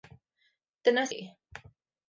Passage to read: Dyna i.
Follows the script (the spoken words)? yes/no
yes